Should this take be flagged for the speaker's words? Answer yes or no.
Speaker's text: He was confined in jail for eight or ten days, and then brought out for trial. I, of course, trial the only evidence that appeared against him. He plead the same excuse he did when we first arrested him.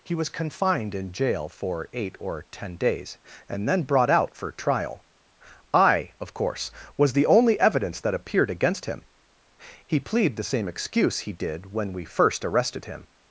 yes